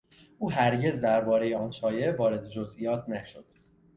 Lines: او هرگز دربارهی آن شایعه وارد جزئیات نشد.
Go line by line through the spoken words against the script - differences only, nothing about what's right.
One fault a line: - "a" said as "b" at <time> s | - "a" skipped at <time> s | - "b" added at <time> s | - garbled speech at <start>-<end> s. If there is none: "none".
none